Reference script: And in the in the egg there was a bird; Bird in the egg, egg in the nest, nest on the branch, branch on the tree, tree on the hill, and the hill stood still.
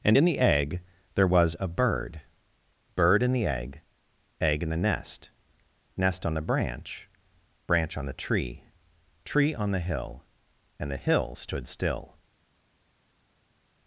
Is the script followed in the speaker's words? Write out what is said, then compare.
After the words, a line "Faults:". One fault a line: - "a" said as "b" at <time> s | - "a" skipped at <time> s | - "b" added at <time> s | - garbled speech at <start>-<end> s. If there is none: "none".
And in the egg there was a bird; Bird in the egg, egg in the nest, nest on the branch, branch on the tree, tree on the hill, and the hill stood still.
Faults:
- "in the" skipped at 0.4 s